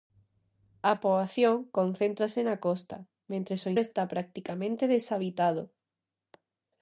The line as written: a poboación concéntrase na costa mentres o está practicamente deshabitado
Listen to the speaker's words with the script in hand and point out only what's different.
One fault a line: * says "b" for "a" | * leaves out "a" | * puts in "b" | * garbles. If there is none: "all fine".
all fine